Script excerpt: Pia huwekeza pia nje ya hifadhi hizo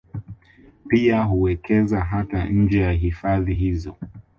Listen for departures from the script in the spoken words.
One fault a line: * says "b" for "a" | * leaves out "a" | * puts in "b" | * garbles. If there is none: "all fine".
* says "hata" for "pia"